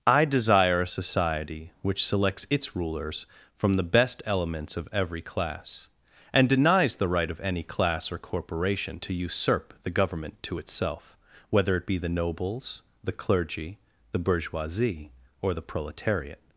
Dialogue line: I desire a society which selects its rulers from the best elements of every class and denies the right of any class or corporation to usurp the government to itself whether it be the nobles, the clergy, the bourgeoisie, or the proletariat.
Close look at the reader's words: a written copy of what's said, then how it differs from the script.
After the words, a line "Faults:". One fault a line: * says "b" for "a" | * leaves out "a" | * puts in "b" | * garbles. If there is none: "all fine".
I desire a society which selects its rulers from the best elements of every class and denies the right of any class or corporation to usurp the government to itself whether it be the nobles, the clergy, the bourgeoisie, or the proletariat.
Faults:
all fine